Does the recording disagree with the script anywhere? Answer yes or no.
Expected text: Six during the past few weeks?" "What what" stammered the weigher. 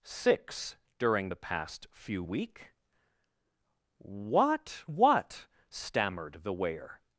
yes